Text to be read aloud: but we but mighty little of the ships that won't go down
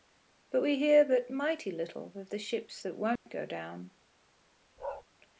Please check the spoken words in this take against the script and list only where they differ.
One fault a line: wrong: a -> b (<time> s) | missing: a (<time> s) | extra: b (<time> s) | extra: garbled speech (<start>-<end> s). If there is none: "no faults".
extra: hear (0.8 s)